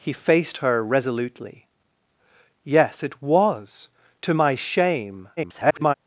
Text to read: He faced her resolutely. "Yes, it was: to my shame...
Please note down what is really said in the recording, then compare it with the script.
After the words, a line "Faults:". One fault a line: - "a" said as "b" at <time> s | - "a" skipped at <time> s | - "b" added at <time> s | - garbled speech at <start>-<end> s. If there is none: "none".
He faced her resolutely. "Yes, it was: to my shame... [garbled]
Faults:
- garbled speech at 5.4-5.9 s